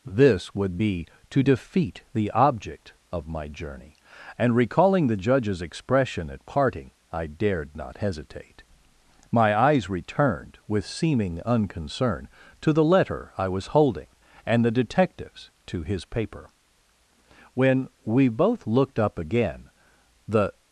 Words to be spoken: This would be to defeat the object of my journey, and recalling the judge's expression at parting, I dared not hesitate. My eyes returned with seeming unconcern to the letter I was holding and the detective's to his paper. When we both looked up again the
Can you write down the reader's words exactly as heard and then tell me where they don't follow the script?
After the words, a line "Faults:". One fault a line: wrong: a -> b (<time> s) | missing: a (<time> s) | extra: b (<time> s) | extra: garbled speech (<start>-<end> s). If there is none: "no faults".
This would be to defeat the object of my journey, and recalling the judge's expression at parting, I dared not hesitate. My eyes returned with seeming unconcern to the letter I was holding and the detective's to his paper. When we both looked up again the
Faults:
no faults